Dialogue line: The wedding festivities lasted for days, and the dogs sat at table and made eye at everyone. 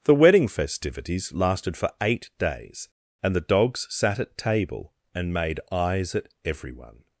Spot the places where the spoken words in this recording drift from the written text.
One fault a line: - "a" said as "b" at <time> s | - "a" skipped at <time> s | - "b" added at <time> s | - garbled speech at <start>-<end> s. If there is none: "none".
- "eight" added at 2.0 s
- "eye" said as "eyes" at 5.7 s